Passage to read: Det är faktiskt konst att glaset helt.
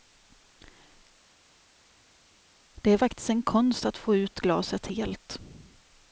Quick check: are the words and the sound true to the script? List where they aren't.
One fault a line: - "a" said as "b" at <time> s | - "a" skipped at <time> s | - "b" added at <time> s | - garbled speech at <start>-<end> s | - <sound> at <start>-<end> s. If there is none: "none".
- "en" added at 3.3 s
- "få ut" added at 4.0 s